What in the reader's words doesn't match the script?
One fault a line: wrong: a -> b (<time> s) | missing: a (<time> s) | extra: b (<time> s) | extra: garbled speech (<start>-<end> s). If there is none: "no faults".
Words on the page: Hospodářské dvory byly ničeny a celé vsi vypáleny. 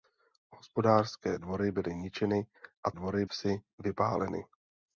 wrong: celé -> dvory (2.9 s)